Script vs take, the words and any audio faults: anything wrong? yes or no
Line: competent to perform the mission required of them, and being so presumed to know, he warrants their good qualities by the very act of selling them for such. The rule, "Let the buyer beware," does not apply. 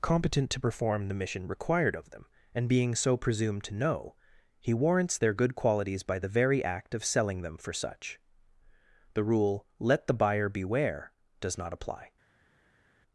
no